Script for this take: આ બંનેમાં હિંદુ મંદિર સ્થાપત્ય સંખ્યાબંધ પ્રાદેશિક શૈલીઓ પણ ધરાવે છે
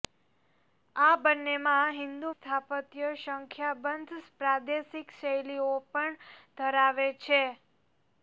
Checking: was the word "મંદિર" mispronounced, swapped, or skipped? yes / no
yes